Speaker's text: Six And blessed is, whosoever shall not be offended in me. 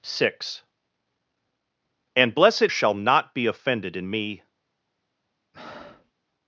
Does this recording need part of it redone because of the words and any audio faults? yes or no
yes